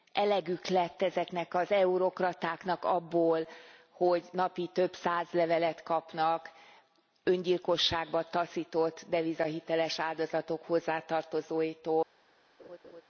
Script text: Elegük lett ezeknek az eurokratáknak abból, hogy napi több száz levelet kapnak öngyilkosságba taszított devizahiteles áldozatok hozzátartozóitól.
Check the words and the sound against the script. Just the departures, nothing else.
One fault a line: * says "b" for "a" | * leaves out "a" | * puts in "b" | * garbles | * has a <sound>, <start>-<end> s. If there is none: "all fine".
* has a laugh, 12.6-13.0 s